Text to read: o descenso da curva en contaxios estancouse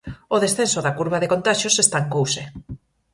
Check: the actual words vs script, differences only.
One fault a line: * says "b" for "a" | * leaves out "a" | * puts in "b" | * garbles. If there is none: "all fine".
* says "de" for "en"